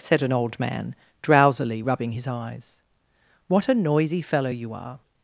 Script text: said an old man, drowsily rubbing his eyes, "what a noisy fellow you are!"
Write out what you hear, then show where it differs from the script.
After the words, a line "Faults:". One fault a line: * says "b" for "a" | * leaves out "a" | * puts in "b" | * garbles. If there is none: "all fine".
said an old man, drowsily rubbing his eyes, "what a noisy fellow you are!"
Faults:
all fine